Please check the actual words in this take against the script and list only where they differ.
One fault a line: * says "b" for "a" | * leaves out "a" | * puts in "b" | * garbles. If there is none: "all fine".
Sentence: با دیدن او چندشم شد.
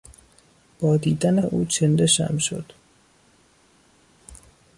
all fine